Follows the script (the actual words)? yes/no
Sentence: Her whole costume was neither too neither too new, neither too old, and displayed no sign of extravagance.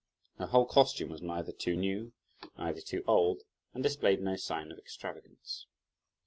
no